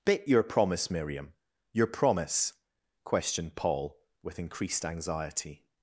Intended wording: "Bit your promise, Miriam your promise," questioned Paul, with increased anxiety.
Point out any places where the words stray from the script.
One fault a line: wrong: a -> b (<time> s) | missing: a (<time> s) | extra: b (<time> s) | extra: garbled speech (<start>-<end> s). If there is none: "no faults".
no faults